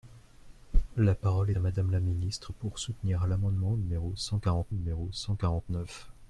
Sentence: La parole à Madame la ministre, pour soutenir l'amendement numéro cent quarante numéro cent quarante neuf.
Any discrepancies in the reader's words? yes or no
no